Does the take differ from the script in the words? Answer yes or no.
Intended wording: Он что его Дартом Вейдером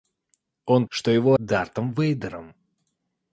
no